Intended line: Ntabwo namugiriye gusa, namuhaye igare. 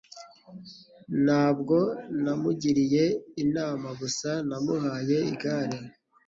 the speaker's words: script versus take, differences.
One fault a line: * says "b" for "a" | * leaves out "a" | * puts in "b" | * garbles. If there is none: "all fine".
* puts in "inama"